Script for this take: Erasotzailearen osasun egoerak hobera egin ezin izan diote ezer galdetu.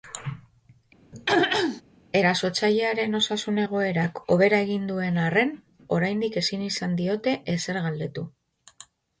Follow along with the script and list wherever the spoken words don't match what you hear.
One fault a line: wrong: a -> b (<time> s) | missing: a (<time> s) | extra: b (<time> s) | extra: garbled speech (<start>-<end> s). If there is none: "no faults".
extra: duen arren oraindik (5.0 s)